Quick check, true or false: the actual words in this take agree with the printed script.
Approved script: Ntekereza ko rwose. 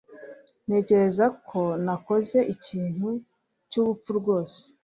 false